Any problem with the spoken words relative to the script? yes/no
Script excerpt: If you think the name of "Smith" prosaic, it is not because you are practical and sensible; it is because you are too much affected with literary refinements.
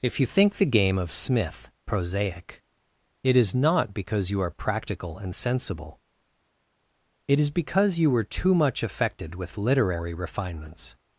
yes